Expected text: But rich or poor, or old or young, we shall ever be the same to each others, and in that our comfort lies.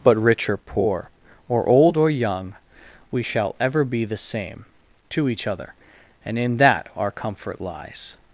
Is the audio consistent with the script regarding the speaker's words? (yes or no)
no